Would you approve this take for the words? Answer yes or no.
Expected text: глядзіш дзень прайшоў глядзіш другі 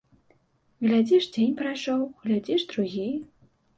yes